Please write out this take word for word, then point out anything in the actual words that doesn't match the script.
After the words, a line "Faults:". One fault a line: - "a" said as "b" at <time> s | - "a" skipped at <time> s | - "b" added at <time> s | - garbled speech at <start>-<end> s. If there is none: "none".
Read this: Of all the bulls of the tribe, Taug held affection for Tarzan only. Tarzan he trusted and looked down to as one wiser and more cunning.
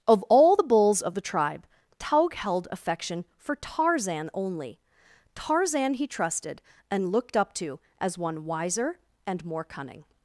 Of all the bulls of the tribe, Taug held affection for Tarzan only. Tarzan he trusted and looked up to as one wiser and more cunning.
Faults:
- "down" said as "up" at 7.4 s